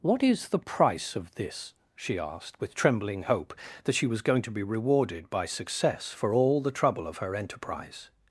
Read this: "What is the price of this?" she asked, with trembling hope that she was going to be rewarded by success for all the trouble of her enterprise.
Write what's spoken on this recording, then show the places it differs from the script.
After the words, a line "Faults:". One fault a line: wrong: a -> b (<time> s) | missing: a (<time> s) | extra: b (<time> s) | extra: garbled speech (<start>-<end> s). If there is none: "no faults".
"What is the price of this?" she asked, with trembling hope that she was going to be rewarded by success for all the trouble of her enterprise.
Faults:
no faults